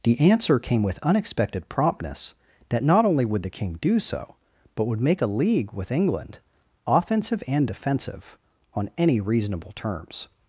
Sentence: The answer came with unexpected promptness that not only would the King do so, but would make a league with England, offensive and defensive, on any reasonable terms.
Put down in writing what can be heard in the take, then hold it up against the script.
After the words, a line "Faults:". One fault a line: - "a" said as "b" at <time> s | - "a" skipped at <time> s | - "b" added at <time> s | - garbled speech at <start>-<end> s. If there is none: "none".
The answer came with unexpected promptness that not only would the King do so, but would make a league with England, offensive and defensive, on any reasonable terms.
Faults:
none